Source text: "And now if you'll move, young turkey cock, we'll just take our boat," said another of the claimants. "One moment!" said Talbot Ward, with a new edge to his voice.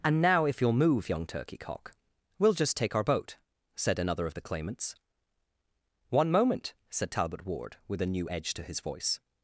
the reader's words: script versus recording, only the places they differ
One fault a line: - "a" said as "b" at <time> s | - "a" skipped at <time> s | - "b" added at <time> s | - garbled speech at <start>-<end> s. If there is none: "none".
none